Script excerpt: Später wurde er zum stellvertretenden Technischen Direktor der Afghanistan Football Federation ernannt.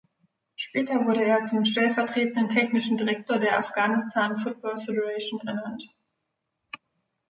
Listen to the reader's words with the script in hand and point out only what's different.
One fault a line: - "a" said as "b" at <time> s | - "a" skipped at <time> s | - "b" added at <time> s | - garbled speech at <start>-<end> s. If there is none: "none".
none